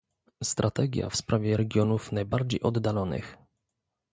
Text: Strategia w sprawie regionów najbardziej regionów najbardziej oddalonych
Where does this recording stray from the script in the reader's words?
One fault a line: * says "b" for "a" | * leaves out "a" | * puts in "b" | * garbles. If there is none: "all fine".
* leaves out "regionów najbardziej"